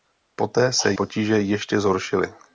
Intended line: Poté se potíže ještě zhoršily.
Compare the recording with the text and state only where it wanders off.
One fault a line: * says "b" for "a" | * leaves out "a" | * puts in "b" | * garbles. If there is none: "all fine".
all fine